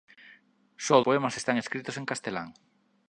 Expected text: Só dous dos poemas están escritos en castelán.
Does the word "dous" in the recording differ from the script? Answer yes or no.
yes